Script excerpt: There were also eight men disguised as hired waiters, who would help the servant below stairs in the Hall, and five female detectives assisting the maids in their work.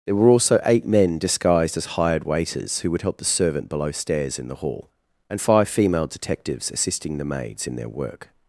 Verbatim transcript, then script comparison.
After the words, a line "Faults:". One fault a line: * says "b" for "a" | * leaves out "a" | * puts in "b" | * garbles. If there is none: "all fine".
There were also eight men disguised as hired waiters, who would help the servant below stairs in the Hall, and five female detectives assisting the maids in their work.
Faults:
all fine